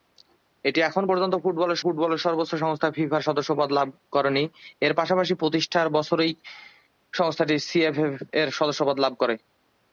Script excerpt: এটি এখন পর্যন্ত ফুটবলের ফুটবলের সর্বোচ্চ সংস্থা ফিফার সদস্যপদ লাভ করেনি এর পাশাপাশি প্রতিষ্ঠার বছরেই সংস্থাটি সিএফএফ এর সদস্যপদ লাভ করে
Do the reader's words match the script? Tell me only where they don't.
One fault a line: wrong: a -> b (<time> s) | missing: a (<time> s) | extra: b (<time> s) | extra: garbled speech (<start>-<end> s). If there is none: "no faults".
no faults